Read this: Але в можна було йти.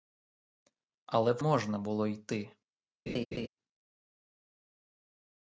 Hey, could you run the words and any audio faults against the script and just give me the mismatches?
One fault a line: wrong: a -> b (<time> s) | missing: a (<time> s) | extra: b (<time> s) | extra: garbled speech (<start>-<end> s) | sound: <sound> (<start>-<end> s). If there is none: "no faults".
sound: laugh (3.1-3.5 s)